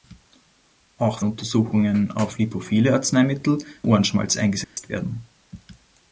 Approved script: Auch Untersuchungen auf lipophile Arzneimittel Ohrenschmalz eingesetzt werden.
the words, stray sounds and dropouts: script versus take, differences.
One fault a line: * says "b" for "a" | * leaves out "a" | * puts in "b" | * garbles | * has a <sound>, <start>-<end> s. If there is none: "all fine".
* has a dropout, 4.6-4.8 s